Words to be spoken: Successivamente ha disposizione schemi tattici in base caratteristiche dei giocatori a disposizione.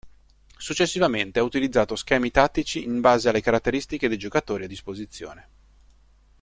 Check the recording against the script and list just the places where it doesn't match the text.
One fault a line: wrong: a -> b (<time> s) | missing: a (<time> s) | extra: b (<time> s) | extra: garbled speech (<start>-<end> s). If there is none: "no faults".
wrong: disposizione -> utilizzato (1.4 s)
extra: alle (3.3 s)